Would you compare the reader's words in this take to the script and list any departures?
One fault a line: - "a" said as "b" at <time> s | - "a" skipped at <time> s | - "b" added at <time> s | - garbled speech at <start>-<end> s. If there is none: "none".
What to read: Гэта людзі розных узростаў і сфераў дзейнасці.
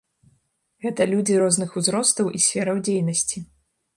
none